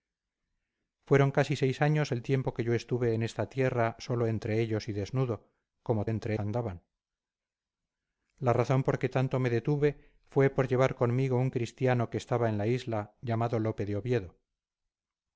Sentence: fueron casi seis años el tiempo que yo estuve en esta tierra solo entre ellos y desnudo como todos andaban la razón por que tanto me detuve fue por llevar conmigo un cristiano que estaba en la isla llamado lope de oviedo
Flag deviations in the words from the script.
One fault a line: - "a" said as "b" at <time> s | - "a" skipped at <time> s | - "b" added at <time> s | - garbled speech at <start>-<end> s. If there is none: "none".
- "todos" said as "entre" at 6.1 s